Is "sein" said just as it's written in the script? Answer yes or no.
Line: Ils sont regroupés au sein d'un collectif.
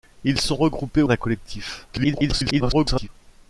no